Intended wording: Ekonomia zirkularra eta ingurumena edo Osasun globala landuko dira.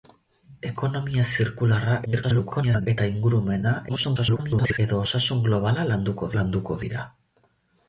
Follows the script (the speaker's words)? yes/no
no